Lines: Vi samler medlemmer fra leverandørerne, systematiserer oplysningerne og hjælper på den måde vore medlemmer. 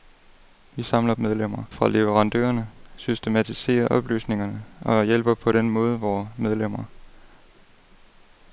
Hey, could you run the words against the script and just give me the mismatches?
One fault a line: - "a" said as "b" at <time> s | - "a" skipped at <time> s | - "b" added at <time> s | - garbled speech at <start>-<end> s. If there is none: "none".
none